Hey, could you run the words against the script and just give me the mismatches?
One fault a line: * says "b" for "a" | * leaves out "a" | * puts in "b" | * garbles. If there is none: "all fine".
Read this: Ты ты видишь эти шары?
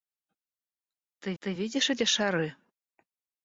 all fine